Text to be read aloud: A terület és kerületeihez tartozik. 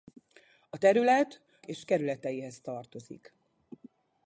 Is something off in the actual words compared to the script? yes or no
no